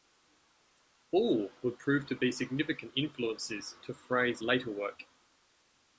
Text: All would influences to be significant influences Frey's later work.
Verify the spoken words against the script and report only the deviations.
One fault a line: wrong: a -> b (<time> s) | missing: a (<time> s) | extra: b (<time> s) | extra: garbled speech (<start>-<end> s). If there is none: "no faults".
wrong: influences -> prove (1.8 s)
extra: to (3.8 s)